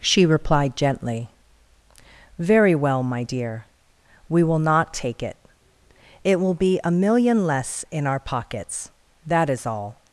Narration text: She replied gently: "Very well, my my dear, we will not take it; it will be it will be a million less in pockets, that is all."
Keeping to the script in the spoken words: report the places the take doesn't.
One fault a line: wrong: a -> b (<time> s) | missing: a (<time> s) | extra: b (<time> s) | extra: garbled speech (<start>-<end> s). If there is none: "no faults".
missing: my (3.2 s)
missing: it will be (6.8 s)
extra: our (8.1 s)